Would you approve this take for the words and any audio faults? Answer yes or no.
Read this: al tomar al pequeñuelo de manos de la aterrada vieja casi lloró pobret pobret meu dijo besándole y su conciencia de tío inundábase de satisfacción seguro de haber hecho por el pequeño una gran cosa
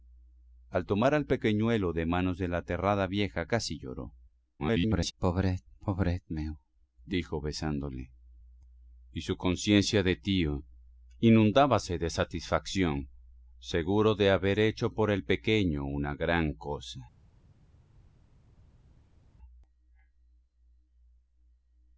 no